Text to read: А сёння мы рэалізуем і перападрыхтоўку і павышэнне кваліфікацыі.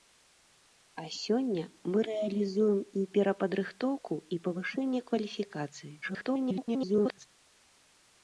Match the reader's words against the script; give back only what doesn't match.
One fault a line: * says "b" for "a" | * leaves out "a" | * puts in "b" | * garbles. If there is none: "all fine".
* garbles